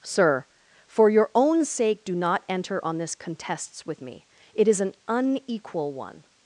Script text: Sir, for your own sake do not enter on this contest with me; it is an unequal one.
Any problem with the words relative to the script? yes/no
yes